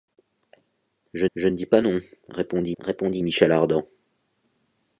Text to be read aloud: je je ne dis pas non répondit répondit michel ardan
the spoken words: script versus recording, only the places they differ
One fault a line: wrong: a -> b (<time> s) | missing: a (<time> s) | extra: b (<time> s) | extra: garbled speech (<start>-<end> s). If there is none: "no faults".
no faults